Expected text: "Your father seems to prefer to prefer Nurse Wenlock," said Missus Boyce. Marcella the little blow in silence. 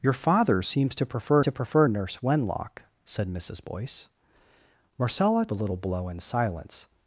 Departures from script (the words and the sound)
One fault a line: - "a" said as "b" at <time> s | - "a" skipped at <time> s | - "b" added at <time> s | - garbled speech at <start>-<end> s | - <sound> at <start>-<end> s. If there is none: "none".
none